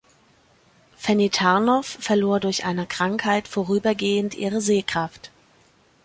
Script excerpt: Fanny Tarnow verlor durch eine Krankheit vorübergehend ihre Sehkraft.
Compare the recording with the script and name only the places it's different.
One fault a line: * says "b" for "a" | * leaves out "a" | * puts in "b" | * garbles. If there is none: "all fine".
all fine